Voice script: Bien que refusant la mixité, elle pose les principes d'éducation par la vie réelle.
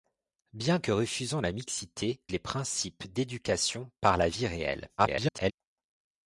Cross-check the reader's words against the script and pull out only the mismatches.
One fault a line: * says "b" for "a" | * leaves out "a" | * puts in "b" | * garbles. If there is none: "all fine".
* leaves out "elle pose"
* garbles